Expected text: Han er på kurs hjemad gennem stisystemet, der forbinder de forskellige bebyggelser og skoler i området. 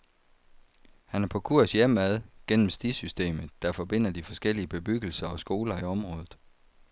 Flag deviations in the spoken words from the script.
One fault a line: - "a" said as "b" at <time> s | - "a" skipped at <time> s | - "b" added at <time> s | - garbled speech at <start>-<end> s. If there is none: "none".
none